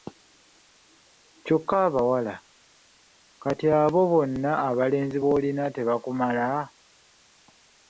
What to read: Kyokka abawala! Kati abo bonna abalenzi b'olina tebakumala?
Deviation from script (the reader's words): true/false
false